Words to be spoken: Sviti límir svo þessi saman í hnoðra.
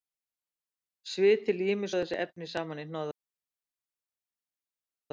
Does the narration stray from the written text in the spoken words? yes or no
yes